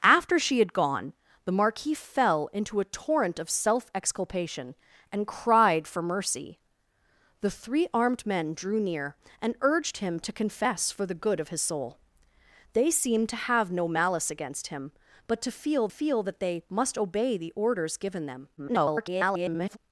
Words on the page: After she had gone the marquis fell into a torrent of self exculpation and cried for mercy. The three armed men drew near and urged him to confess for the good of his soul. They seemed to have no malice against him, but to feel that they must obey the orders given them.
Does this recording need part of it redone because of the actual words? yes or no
yes